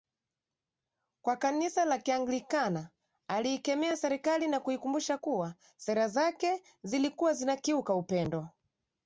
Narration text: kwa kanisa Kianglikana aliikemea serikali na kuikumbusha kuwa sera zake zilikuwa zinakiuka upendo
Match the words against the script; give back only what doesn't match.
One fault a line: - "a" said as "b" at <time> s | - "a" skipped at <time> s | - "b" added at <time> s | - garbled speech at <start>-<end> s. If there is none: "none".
- "la" added at 1.9 s